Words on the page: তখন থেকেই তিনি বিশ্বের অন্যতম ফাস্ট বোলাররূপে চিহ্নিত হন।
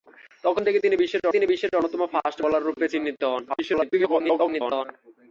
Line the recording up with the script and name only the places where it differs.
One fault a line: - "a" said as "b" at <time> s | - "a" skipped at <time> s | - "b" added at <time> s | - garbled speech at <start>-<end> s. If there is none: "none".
- "তিনি বিশ্বের" added at 1.3 s
- garbled speech at 3.5-4.9 s